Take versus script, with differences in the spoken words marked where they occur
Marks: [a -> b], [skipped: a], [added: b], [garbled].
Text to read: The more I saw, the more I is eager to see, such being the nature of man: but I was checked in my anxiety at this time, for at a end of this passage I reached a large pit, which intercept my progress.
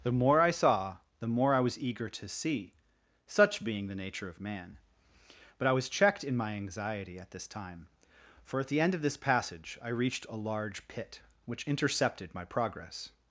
The more I saw, the more I [is -> was] eager to see, such being the nature of man: but I was checked in my anxiety at this time, for at [a -> the] end of this passage I reached a large pit, which [intercept -> intercepted] my progress.